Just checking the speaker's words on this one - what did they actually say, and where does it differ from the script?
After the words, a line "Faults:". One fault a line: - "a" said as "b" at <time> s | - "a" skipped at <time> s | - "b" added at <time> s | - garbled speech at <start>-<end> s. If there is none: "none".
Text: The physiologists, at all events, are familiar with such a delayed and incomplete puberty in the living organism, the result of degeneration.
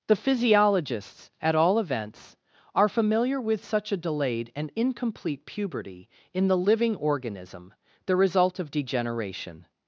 The physiologists, at all events, are familiar with such a delayed and incomplete puberty in the living organism, the result of degeneration.
Faults:
none